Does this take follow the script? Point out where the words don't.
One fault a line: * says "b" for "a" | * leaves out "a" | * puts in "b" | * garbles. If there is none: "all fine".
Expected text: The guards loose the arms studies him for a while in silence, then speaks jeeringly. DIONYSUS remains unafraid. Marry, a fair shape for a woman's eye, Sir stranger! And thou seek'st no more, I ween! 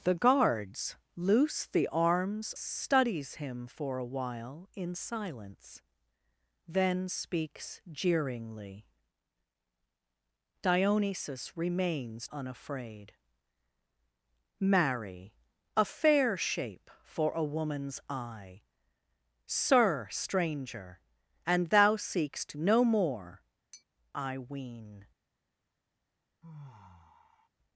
all fine